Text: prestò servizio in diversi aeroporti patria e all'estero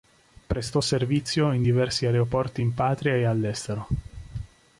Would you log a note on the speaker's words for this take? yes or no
yes